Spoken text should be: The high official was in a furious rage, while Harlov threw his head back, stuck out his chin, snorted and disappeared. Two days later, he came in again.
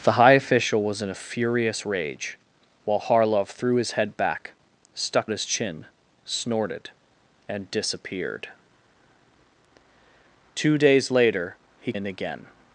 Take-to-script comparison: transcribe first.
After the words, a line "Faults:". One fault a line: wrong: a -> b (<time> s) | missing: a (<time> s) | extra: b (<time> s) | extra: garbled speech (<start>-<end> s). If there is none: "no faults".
The high official was in a furious rage, while Harlov threw his head back, stuck his chin, snorted and disappeared. Two days later, he in again.
Faults:
missing: out (5.3 s)
missing: came (11.9 s)